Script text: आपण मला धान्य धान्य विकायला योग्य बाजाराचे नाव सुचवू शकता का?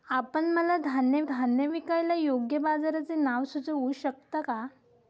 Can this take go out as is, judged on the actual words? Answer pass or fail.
pass